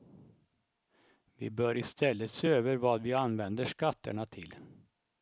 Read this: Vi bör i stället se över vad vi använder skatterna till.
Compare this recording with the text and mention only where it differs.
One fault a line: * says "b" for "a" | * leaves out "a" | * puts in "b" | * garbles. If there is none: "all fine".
all fine